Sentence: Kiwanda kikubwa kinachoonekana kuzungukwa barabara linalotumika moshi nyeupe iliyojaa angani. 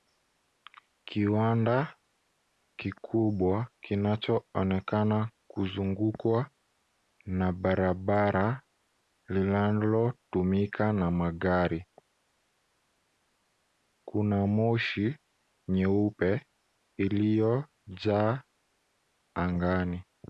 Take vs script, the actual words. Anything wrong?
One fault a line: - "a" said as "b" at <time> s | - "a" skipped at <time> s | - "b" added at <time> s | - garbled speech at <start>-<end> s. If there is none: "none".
- "na" added at 7.2 s
- "na magari Kuna" added at 10.9 s